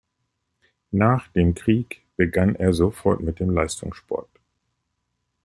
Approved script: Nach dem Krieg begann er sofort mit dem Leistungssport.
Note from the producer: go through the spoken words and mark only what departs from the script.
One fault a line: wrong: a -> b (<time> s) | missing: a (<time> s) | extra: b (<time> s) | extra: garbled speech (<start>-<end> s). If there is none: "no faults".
no faults